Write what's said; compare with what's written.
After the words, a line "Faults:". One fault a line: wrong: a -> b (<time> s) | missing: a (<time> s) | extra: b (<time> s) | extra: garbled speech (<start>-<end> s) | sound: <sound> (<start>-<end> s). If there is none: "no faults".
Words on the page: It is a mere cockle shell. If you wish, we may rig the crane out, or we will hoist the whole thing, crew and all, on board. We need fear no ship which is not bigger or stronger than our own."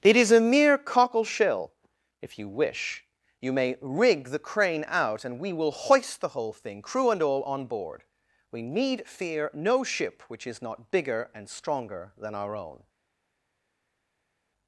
It is a mere cockle shell. If you wish, you may rig the crane out, and we will hoist the whole thing, crew and all, on board. We need fear no ship which is not bigger and stronger than our own."
Faults:
wrong: we -> you (3.4 s)
wrong: or -> and (5.2 s)
wrong: or -> and (11.3 s)